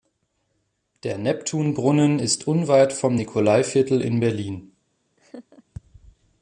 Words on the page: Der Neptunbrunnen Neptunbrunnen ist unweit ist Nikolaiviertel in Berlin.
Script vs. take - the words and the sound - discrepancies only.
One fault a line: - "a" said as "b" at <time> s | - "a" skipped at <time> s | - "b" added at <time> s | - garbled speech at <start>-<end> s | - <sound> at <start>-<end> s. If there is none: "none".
- "Neptunbrunnen" skipped at 2.2 s
- "ist" said as "vom" at 2.9 s
- laugh at 5.2-5.6 s